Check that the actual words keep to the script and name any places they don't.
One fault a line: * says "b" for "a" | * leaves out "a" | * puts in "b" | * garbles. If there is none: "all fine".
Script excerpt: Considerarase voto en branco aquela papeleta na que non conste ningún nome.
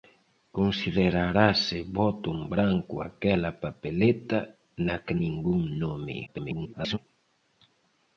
* leaves out "non conste"
* garbles